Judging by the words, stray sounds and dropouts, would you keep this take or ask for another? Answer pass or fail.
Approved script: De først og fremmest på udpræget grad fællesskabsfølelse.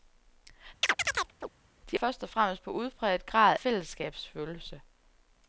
fail